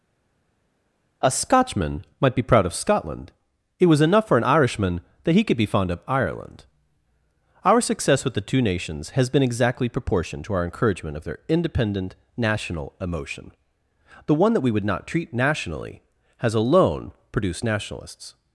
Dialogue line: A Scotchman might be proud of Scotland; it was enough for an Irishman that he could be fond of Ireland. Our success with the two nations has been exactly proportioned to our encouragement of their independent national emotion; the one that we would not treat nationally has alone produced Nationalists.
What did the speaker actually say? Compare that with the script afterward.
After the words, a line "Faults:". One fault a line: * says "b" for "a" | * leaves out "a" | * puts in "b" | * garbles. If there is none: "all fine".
A Scotchman might be proud of Scotland; it was enough for an Irishman that he could be fond of Ireland. Our success with the two nations has been exactly proportioned to our encouragement of their independent national emotion; the one that we would not treat nationally has alone produced Nationalists.
Faults:
all fine